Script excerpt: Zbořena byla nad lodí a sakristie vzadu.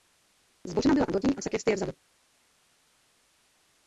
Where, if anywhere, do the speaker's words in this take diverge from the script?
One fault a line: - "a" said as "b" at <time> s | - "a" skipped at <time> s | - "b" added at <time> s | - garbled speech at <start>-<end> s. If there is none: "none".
none